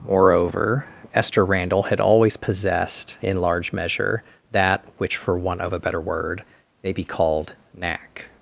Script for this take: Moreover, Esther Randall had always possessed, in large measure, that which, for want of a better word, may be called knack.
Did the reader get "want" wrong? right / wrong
right